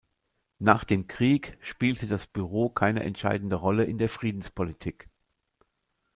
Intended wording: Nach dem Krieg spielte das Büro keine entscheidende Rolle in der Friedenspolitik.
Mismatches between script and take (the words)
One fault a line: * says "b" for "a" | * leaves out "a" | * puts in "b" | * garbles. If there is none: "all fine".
all fine